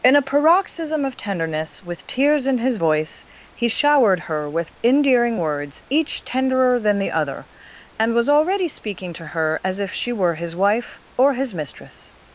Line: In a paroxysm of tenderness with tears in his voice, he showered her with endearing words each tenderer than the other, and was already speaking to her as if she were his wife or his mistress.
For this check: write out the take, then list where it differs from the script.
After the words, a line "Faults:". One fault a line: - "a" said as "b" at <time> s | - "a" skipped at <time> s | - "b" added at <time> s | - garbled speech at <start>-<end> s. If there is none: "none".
In a paroxysm of tenderness with tears in his voice, he showered her with endearing words each tenderer than the other, and was already speaking to her as if she were his wife or his mistress.
Faults:
none